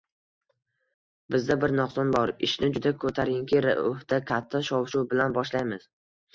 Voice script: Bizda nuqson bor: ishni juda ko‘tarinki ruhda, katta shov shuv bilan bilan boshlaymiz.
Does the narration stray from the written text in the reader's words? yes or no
yes